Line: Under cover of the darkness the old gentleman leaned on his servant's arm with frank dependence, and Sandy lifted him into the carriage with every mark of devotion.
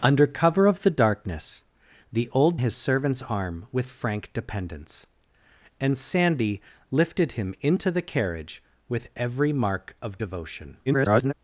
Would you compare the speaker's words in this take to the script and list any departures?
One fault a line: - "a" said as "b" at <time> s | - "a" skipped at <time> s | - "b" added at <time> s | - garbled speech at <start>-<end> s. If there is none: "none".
- "gentleman leaned on" skipped at 2.6 s
- garbled speech at 10.9-11.3 s